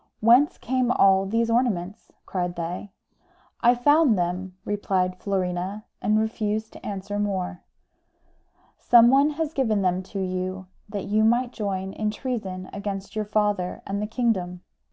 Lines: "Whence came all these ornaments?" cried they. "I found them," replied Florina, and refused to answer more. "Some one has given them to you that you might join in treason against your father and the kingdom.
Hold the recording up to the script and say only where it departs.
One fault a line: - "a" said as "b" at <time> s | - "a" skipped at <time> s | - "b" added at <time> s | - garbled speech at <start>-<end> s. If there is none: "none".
none